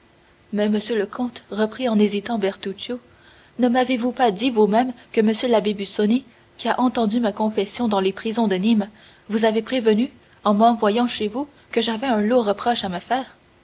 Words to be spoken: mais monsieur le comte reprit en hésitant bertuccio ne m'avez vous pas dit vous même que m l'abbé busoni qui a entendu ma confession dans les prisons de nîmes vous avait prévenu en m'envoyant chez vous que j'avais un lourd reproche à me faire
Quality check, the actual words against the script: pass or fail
pass